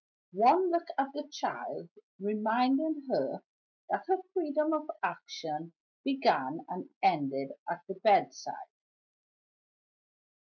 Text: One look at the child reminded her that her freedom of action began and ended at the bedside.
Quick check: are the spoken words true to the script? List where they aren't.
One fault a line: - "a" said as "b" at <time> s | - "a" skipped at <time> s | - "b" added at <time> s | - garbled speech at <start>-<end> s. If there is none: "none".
none